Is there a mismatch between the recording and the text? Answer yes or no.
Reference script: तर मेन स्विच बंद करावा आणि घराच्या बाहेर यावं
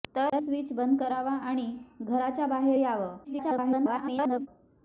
yes